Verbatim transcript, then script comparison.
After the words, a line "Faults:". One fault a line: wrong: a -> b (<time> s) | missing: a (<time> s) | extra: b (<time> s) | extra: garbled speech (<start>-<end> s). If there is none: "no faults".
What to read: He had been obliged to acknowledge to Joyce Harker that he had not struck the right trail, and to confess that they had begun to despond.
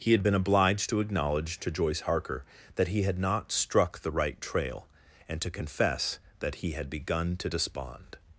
He had been obliged to acknowledge to Joyce Harker that he had not struck the right trail, and to confess that he had begun to despond.
Faults:
wrong: they -> he (6.6 s)